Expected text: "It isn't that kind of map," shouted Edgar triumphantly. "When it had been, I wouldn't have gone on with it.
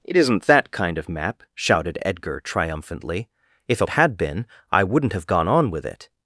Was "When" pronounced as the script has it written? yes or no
no